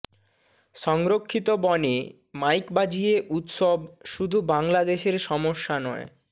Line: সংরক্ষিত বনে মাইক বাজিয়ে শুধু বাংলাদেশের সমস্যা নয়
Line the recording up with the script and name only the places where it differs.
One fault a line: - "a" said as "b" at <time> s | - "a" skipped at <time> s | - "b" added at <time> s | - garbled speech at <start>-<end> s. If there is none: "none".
- "উৎসব" added at 3.3 s